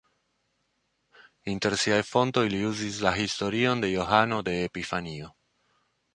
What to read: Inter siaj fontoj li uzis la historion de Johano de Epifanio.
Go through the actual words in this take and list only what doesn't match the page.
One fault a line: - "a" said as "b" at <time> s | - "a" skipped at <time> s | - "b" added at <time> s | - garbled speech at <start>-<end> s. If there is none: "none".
none